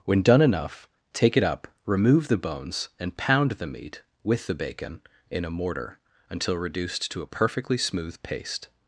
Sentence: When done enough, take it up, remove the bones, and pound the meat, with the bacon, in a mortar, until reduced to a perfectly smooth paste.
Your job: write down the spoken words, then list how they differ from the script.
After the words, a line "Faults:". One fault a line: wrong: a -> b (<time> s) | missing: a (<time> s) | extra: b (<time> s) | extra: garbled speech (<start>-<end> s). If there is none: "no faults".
When done enough, take it up, remove the bones, and pound the meat, with the bacon, in a mortar, until reduced to a perfectly smooth paste.
Faults:
no faults